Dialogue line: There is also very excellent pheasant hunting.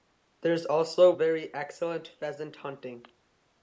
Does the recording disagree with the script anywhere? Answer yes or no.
no